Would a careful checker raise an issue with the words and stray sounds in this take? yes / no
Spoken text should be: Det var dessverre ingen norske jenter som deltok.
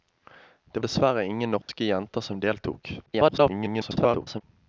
yes